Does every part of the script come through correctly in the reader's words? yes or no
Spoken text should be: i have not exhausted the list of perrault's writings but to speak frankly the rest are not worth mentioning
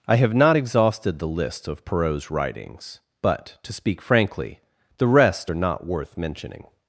yes